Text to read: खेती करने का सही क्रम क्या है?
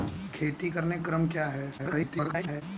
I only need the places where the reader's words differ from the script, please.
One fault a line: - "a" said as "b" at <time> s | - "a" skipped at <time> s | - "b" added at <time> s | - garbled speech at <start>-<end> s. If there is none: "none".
- "का सही" skipped at 1.0 s
- garbled speech at 1.8-2.6 s